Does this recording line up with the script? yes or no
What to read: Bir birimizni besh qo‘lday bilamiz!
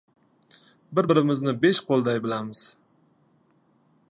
yes